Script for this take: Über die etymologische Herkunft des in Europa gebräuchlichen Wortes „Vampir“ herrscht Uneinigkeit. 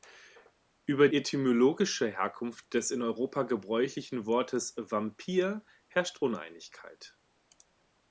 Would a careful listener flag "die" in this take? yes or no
yes